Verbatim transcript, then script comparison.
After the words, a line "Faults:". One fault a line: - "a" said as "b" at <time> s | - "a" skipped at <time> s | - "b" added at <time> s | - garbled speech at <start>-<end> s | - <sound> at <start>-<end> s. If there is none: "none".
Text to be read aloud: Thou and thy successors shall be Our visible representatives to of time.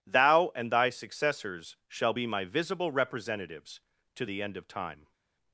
Thou and thy successors shall be My visible representatives to the end of time.
Faults:
- "Our" said as "My" at 2.2 s
- "the end" added at 4.2 s